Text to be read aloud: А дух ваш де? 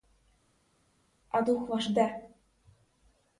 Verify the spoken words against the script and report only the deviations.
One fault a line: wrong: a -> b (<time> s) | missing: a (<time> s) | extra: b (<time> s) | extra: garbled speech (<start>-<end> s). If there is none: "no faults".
no faults